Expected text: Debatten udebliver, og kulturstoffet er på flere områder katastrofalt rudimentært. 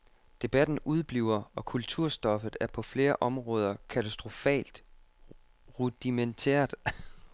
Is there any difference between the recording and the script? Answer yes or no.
no